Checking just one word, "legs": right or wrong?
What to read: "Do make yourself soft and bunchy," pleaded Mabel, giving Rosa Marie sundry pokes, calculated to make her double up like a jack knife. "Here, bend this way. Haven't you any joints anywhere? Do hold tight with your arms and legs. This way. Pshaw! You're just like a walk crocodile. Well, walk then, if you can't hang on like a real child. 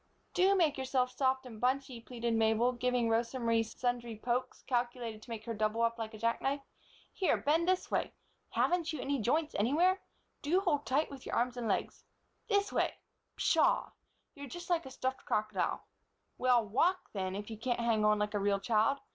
right